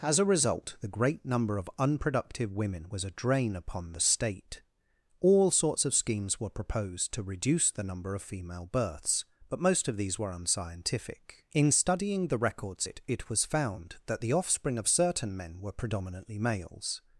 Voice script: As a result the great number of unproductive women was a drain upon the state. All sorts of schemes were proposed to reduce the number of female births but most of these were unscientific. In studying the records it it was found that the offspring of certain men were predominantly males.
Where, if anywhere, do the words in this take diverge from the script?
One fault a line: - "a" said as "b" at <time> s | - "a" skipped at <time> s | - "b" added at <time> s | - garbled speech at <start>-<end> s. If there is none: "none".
none